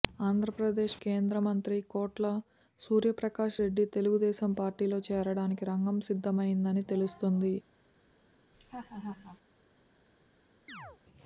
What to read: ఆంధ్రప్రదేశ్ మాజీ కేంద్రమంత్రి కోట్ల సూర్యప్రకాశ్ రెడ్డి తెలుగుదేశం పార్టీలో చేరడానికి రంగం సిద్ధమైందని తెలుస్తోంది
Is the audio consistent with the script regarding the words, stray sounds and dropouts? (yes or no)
no